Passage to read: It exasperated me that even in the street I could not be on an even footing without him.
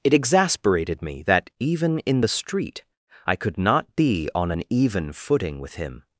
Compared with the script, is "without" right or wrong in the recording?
wrong